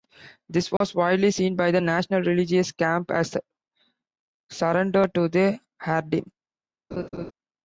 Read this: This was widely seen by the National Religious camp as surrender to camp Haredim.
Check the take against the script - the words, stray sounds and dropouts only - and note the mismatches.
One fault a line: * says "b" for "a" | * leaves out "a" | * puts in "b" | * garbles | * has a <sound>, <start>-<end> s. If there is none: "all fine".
* has a dropout, 0.8-0.8 s
* says "the" for "camp"
* has a laugh, 6.9-7.3 s